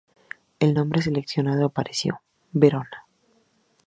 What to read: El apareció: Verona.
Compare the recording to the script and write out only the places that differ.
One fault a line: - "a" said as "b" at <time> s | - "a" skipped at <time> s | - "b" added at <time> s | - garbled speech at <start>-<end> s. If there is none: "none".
- "nombre seleccionado" added at 0.7 s